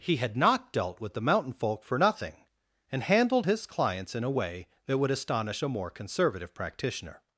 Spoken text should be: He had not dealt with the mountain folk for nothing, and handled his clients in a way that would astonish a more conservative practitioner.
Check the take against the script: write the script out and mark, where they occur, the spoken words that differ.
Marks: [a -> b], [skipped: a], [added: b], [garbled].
He had not dealt with the mountain folk for nothing, and handled his clients in a way that would astonish a more conservative practitioner.